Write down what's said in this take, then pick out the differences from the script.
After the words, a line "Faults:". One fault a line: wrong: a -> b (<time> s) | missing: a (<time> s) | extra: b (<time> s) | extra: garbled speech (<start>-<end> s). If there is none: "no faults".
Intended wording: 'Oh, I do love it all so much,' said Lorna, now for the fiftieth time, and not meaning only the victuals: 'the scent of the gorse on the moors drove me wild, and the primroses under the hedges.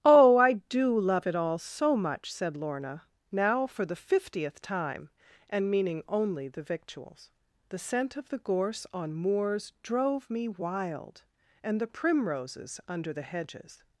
'Oh, I do love it all so much,' said Lorna, now for the fiftieth time, and meaning only the victuals: 'the scent of the gorse on moors drove me wild, and the primroses under the hedges.
Faults:
missing: not (5.7 s)
missing: the (9.1 s)